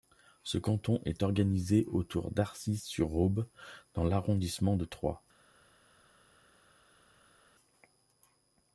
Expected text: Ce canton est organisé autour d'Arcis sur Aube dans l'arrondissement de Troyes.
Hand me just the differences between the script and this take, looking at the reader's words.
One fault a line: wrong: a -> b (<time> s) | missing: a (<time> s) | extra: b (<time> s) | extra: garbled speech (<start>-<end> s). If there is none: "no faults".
no faults